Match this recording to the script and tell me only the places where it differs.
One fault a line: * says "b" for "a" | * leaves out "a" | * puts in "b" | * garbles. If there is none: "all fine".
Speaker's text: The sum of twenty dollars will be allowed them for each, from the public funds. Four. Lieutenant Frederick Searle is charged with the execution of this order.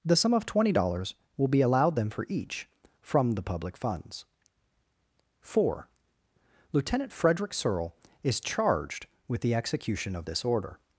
all fine